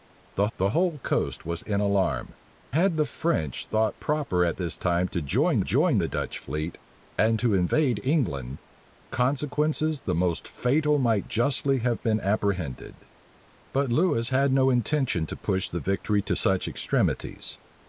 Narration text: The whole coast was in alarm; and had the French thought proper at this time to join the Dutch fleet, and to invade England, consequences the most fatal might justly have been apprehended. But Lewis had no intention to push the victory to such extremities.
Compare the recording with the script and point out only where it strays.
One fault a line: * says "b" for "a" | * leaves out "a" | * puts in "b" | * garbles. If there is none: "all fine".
* puts in "the"
* leaves out "and"
* puts in "join"